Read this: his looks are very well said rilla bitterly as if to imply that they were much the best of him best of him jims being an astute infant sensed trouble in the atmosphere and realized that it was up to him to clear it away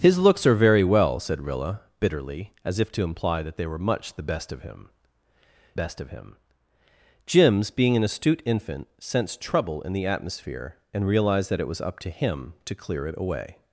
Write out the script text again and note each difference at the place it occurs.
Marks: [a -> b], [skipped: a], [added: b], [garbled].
his looks are very well said rilla bitterly as if to imply that they were much the best of him best of him jims being an astute infant sensed trouble in the atmosphere and realized that it was up to him to clear it away